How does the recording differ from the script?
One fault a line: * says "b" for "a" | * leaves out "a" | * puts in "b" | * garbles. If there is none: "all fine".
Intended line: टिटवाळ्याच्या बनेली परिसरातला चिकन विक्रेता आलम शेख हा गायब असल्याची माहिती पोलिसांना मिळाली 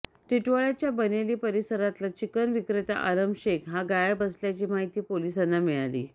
all fine